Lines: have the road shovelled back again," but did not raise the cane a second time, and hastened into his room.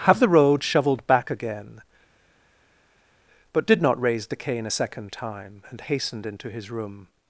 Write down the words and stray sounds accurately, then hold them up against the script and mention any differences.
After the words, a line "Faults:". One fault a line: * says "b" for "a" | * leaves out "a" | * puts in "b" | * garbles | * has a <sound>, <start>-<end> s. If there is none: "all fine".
have the road shovelled back again," but did not raise the cane a second time, and hastened into his room.
Faults:
all fine